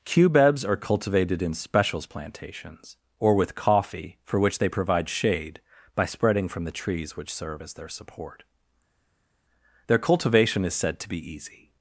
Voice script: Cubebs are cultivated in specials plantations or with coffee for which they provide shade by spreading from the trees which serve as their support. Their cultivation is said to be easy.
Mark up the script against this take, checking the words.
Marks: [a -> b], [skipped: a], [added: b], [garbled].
Cubebs are cultivated in specials plantations or with coffee for which they provide shade by spreading from the trees which serve as their support. Their cultivation is said to be easy.